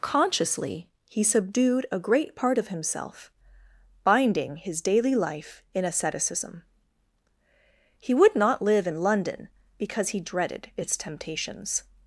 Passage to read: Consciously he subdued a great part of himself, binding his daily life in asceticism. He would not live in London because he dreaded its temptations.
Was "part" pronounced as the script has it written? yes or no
yes